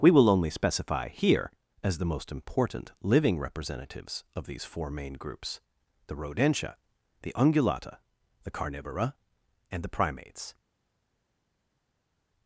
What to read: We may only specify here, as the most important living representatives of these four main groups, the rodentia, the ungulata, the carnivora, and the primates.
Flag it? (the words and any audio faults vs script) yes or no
yes